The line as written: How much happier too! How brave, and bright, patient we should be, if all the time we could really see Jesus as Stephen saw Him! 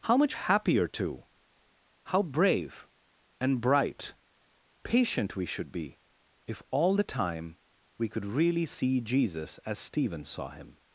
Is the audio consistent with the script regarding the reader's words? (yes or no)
yes